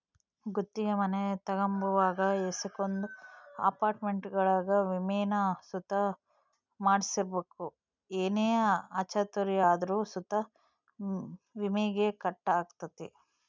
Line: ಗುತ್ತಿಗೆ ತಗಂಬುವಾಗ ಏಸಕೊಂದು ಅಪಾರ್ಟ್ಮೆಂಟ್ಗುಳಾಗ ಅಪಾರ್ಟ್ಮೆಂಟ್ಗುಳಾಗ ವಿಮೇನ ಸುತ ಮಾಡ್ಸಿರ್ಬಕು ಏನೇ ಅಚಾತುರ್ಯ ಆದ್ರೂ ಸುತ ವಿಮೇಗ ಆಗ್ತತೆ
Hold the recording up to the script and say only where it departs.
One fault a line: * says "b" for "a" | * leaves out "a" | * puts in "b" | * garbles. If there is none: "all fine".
* puts in "ಮನೆ"
* leaves out "ಅಪಾರ್ಟ್ಮೆಂಟ್ಗುಳಾಗ"
* puts in "ಕಟ್"